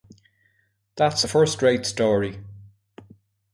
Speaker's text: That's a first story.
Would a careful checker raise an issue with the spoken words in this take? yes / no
yes